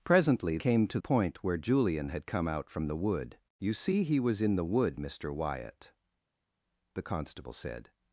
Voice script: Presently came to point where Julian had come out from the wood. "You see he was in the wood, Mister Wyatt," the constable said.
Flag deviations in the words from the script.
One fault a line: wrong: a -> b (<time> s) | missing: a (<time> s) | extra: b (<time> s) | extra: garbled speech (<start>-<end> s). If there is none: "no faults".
no faults